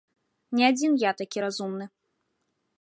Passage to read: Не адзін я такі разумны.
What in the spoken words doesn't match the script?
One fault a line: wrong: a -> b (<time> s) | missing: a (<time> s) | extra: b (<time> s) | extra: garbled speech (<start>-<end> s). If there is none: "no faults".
no faults